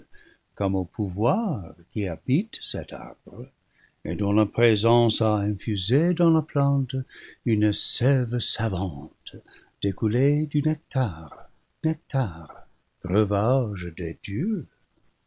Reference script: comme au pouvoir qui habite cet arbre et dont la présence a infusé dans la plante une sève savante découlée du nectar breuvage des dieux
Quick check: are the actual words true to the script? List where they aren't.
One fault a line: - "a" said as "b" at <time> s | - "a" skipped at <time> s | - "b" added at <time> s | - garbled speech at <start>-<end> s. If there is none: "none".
- "nectar" added at 11.8 s